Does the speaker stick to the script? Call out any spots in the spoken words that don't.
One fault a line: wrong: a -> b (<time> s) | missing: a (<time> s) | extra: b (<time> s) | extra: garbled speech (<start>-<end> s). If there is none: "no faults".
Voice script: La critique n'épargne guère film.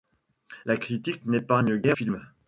no faults